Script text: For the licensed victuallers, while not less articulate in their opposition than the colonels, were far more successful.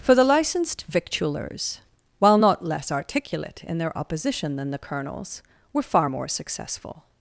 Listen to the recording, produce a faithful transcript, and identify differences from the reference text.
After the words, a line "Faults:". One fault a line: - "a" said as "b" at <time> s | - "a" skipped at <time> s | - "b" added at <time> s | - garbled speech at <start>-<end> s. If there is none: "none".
For the licensed victuallers, while not less articulate in their opposition than the colonels, were far more successful.
Faults:
none